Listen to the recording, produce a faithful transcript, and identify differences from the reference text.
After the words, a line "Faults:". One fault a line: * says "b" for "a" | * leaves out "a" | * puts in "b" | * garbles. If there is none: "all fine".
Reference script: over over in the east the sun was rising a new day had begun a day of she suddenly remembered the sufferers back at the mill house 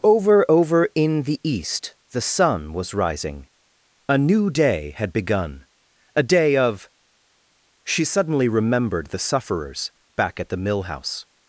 over over in the east the sun was rising a new day had begun a day of she suddenly remembered the sufferers back at the mill house
Faults:
all fine